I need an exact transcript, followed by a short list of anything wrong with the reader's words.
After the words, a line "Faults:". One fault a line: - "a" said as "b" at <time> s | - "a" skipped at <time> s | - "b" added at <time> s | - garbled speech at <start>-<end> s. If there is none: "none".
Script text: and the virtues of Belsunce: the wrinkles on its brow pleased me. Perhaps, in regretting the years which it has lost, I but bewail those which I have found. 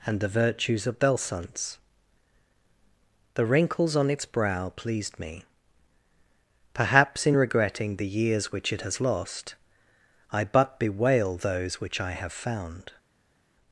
and the virtues of Belsunce: the wrinkles on its brow pleased me. Perhaps, in regretting the years which it has lost, I but bewail those which I have found.
Faults:
none